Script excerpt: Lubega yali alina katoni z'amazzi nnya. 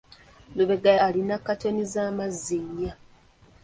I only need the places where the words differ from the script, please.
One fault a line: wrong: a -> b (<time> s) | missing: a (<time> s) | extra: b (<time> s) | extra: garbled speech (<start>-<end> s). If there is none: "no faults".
missing: yali (0.9 s)